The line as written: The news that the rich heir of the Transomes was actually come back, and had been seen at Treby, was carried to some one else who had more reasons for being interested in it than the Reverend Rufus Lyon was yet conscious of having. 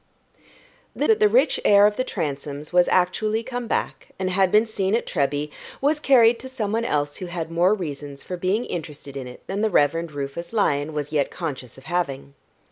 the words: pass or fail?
fail